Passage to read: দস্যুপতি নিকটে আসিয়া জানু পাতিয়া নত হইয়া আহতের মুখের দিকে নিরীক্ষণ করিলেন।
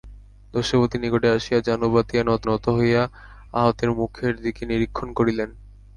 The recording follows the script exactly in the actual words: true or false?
false